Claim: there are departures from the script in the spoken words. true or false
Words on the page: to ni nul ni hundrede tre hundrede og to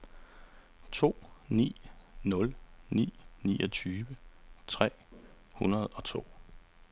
true